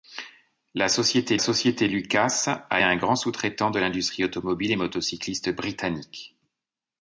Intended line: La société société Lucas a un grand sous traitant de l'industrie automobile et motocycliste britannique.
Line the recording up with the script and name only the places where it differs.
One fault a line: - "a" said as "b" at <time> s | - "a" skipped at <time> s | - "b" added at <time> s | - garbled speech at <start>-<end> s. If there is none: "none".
none